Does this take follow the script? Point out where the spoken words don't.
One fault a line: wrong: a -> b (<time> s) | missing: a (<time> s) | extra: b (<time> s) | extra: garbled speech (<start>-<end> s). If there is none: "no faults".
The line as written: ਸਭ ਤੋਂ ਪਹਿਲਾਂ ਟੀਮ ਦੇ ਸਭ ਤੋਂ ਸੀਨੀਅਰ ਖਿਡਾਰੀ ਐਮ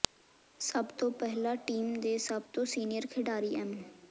no faults